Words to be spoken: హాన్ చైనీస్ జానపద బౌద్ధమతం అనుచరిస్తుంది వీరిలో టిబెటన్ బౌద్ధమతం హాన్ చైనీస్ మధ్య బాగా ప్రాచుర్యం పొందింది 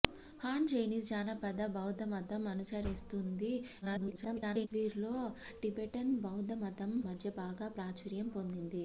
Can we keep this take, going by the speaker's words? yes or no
no